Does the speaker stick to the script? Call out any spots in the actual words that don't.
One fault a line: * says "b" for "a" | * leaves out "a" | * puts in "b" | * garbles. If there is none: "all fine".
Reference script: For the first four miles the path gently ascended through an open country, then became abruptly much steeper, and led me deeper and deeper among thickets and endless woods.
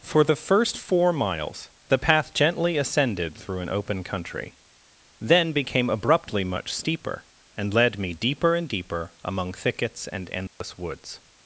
all fine